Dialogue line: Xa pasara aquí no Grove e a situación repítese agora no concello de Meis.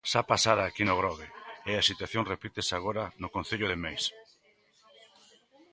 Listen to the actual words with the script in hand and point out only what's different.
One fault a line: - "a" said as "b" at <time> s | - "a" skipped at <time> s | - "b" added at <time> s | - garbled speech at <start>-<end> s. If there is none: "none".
none